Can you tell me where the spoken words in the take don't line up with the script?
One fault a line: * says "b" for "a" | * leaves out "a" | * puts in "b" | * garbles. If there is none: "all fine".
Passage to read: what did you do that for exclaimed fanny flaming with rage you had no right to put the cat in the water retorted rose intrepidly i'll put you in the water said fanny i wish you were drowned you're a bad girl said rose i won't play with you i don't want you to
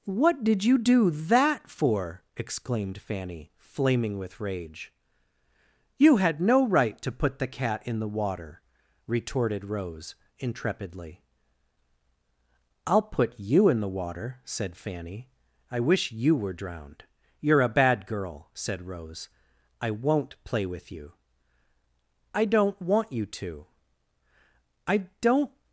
* puts in "i don't"